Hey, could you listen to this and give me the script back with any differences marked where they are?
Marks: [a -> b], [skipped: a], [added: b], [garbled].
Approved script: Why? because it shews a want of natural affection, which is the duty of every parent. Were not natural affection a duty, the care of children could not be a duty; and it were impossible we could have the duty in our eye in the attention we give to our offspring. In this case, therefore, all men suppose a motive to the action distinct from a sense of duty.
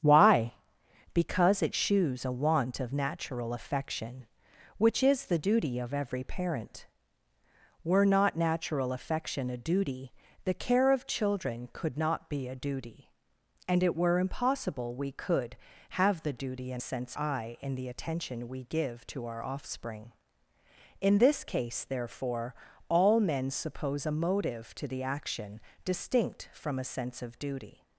Why? because it shews a want of natural affection, which is the duty of every parent. Were not natural affection a duty, the care of children could not be a duty; and it were impossible we could have the duty in [our -> sense] eye in the attention we give to our offspring. In this case, therefore, all men suppose a motive to the action distinct from a sense of duty.